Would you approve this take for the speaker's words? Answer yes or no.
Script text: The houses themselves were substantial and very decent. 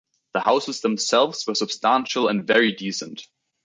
yes